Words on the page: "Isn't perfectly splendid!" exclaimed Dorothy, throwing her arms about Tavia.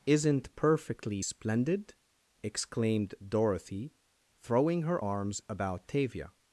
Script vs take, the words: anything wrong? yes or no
no